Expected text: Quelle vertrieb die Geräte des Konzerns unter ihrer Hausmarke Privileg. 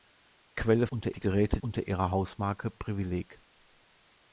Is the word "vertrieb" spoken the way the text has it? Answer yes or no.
no